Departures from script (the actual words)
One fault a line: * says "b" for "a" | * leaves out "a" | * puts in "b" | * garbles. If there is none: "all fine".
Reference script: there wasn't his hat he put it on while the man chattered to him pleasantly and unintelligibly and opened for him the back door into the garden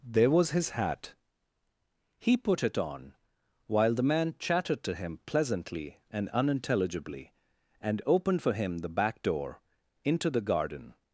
* says "was" for "wasn't"